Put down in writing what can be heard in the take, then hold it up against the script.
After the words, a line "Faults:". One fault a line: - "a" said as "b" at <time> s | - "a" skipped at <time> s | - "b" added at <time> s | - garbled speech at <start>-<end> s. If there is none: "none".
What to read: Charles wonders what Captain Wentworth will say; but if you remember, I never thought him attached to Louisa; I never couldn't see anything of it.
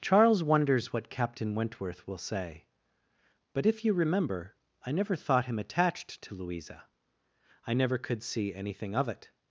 Charles wonders what Captain Wentworth will say; but if you remember, I never thought him attached to Louisa; I never could see anything of it.
Faults:
- "couldn't" said as "could" at 8.0 s